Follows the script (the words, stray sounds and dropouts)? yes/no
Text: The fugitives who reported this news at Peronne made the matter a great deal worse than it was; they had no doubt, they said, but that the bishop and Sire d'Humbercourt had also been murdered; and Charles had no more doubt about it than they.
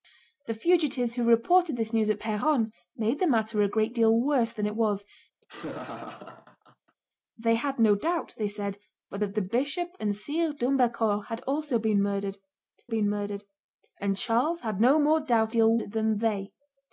no